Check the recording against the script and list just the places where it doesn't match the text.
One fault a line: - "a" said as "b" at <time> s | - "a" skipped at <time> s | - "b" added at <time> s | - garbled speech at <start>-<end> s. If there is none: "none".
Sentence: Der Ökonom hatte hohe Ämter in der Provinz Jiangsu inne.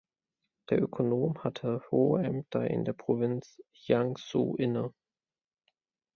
none